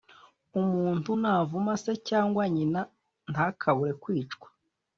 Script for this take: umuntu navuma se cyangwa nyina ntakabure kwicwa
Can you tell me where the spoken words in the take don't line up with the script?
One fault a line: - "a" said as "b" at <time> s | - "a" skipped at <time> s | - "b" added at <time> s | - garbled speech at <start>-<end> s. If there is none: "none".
none